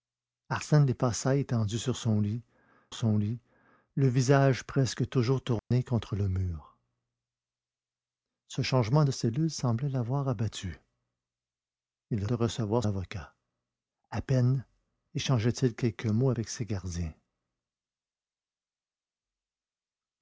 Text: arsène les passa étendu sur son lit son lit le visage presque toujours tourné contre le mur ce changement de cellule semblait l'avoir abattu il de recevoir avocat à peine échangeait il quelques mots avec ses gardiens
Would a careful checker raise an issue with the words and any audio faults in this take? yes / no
yes